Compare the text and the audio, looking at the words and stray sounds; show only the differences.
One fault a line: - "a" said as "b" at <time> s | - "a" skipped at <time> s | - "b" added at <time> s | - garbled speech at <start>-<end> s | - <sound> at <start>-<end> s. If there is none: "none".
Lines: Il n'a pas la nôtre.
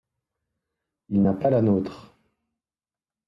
none